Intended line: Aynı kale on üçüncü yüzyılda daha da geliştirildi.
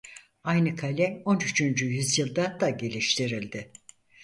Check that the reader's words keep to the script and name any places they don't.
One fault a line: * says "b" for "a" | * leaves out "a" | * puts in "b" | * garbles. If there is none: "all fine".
* leaves out "daha"